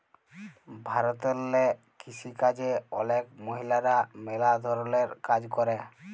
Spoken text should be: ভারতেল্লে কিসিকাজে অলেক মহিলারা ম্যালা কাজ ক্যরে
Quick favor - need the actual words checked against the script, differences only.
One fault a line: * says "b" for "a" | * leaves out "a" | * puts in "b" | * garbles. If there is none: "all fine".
* puts in "ধরলের"